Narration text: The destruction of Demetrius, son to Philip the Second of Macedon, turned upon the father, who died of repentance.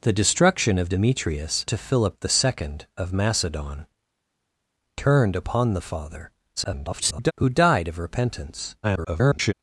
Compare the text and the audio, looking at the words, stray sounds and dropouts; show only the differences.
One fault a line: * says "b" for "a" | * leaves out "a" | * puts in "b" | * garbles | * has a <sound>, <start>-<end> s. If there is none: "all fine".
* leaves out "son"
* garbles
* garbles